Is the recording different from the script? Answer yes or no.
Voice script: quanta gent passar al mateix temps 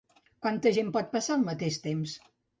yes